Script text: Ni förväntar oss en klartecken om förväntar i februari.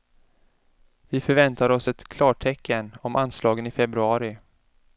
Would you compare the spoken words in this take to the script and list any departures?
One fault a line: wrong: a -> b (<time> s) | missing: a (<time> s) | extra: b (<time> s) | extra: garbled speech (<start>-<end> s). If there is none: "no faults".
wrong: Ni -> Vi (1.1 s)
wrong: en -> ett (1.9 s)
wrong: förväntar -> anslagen (3.1 s)